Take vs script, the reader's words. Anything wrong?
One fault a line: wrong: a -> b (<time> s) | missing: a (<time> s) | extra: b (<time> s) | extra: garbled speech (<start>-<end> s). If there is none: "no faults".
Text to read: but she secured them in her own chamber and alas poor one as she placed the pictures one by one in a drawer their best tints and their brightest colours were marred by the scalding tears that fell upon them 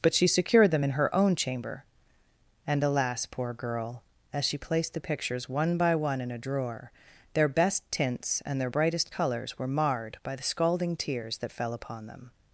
wrong: one -> girl (3.5 s)